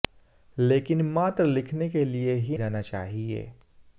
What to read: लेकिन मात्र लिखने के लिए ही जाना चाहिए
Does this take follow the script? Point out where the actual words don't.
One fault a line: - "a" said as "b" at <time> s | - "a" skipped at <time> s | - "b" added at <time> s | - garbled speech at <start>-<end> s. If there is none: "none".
none